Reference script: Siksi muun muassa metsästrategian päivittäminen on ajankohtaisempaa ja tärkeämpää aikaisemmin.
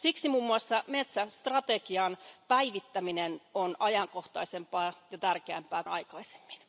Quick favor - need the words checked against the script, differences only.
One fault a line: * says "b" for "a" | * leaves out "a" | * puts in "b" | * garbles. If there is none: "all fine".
all fine